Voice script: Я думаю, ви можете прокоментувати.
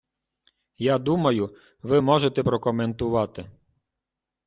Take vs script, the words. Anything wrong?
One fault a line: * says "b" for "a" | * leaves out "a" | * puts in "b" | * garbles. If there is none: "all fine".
all fine